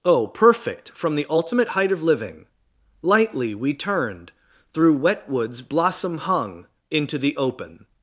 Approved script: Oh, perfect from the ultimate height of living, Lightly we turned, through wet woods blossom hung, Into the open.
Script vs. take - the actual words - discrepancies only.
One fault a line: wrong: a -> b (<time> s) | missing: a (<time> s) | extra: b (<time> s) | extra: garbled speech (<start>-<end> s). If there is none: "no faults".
no faults